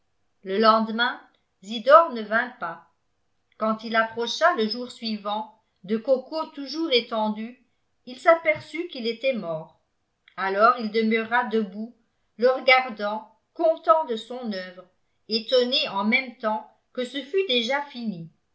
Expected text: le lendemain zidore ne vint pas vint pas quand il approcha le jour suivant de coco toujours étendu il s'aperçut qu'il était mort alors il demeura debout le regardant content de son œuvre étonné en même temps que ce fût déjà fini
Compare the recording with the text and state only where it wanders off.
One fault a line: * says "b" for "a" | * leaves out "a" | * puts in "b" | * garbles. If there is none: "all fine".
* leaves out "vint pas"